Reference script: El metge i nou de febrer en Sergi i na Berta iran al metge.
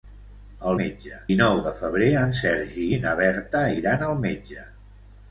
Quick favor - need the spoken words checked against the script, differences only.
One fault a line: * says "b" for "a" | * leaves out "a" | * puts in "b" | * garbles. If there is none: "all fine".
all fine